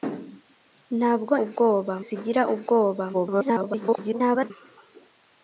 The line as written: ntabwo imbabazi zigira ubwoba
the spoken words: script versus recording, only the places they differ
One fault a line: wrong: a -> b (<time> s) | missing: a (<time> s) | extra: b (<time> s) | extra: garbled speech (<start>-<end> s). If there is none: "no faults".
wrong: imbabazi -> ubwoba (1.4 s)
extra: garbled speech (3.1-4.5 s)